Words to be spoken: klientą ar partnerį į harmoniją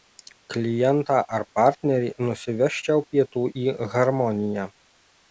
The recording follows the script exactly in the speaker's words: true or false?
false